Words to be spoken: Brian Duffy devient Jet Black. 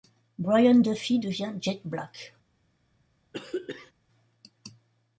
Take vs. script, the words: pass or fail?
pass